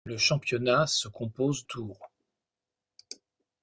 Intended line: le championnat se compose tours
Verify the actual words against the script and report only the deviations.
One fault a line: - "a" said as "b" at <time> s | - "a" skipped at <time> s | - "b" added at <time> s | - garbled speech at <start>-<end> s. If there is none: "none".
none